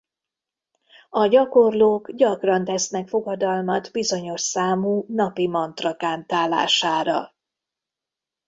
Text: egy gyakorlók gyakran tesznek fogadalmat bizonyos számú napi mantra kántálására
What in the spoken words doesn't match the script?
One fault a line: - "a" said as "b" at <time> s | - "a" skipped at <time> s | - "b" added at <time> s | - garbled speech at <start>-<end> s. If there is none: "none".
- "egy" said as "a" at 1.1 s